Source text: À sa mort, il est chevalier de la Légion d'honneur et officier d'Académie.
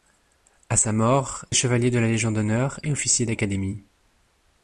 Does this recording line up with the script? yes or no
no